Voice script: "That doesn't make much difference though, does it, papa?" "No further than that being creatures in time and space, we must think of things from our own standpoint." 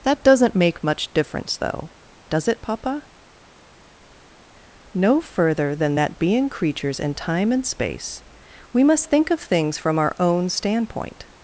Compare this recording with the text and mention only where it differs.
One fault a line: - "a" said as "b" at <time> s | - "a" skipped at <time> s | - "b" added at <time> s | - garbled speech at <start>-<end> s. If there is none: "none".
none